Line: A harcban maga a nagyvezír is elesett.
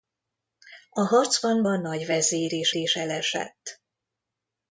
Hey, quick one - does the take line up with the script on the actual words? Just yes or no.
no